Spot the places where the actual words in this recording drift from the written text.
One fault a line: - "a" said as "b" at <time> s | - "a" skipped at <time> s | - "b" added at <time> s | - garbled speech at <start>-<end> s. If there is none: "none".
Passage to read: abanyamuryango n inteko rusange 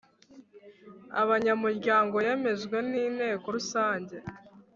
- "yemejwe" added at 2.2 s